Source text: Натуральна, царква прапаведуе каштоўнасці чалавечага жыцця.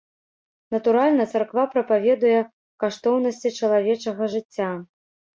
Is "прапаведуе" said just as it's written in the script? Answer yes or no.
yes